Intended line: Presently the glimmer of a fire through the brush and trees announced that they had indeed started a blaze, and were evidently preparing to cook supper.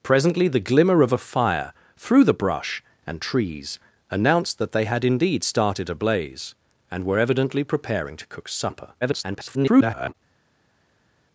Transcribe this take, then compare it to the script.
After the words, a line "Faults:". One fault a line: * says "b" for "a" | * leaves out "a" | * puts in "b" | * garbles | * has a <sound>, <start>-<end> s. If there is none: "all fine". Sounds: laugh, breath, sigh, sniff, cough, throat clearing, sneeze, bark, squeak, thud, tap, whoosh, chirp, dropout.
Presently the glimmer of a fire through the brush and trees announced that they had indeed started a blaze, and were evidently preparing to cook supper. [garbled]
Faults:
* garbles